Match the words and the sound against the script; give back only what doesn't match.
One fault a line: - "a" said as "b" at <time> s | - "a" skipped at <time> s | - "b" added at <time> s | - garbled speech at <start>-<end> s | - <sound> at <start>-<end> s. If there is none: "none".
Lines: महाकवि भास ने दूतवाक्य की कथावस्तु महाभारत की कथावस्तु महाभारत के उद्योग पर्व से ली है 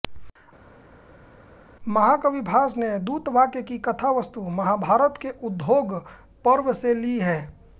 - "की कथावस्तु महाभारत" skipped at 5.2 s